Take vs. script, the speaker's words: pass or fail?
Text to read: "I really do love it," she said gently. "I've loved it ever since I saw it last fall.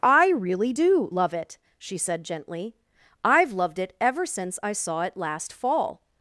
pass